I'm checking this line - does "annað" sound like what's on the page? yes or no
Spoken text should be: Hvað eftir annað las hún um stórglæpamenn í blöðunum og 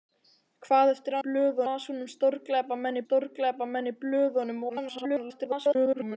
no